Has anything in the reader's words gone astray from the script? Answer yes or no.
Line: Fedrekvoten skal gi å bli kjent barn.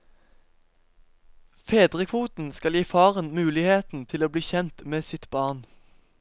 yes